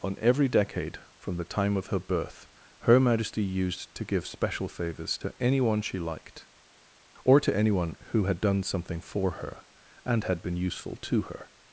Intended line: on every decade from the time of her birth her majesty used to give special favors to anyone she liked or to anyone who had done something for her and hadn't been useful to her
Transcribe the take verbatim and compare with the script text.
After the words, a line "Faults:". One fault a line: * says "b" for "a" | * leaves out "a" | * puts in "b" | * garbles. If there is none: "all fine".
on every decade from the time of her birth her majesty used to give special favors to anyone she liked or to anyone who had done something for her and had been useful to her
Faults:
* says "had" for "hadn't"